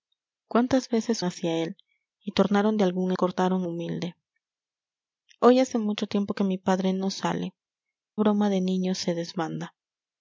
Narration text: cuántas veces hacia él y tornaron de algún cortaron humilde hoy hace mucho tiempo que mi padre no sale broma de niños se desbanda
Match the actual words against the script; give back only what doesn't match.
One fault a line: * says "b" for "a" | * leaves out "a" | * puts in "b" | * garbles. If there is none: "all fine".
all fine